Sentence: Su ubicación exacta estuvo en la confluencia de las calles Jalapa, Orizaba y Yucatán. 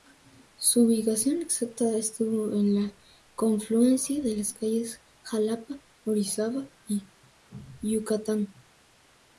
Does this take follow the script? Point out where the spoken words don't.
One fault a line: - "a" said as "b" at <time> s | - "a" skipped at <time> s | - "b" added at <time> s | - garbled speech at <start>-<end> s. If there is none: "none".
none